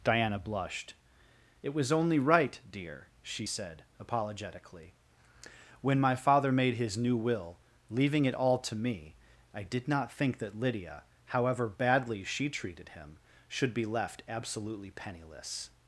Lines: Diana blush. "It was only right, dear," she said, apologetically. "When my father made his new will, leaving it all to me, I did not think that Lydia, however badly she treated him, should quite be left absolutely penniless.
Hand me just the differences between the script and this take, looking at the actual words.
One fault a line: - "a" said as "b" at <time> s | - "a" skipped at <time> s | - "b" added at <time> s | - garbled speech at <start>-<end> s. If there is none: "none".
- "blush" said as "blushed" at 0.4 s
- "quite" skipped at 13.7 s